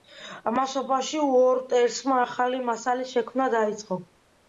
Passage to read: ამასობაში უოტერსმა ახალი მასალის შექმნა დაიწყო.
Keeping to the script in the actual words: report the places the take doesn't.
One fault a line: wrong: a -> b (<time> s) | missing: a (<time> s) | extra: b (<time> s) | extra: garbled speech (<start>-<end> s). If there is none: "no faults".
no faults